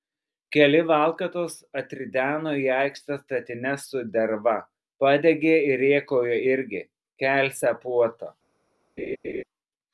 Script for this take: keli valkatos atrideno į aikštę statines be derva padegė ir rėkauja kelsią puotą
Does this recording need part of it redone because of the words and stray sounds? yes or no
yes